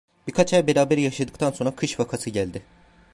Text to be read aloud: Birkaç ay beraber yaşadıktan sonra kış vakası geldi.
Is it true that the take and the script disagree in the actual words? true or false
false